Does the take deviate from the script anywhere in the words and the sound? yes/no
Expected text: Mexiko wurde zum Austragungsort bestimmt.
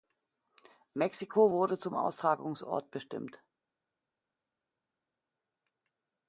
no